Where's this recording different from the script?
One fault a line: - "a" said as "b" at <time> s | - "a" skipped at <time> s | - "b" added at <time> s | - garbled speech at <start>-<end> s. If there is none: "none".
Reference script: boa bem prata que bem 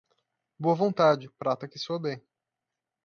- "bem" said as "vontade" at 0.7 s
- "soa" added at 1.8 s